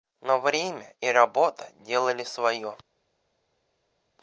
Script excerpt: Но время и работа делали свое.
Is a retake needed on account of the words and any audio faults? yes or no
no